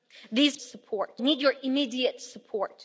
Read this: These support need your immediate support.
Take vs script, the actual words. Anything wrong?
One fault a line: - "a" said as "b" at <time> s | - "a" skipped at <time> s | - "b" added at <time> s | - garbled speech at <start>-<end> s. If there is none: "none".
none